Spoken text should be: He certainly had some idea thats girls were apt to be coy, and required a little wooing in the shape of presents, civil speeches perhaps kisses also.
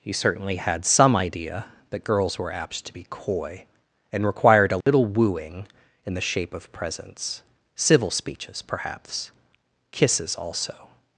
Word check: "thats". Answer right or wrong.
wrong